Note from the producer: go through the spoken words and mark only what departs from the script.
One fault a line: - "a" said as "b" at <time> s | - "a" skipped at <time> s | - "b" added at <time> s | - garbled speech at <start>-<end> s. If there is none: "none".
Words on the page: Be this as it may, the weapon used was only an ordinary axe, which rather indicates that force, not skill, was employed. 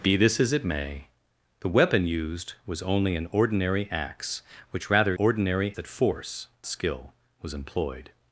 - "indicates" said as "ordinary" at 5.2 s
- "not" skipped at 6.5 s